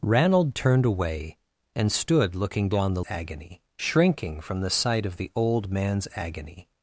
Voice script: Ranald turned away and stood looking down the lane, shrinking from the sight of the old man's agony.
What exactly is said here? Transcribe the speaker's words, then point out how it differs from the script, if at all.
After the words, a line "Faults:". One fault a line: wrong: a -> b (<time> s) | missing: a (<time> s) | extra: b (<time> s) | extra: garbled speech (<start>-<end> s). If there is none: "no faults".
Ranald turned away and stood looking down the agony, shrinking from the sight of the old man's agony.
Faults:
wrong: lane -> agony (3.1 s)